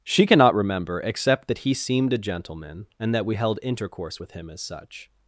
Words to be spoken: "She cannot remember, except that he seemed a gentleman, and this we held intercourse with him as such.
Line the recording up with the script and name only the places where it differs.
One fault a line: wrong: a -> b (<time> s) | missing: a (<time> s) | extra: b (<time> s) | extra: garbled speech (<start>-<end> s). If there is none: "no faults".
wrong: this -> that (3.1 s)